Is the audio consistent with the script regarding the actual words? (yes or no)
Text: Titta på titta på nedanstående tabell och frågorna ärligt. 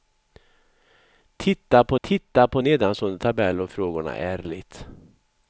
yes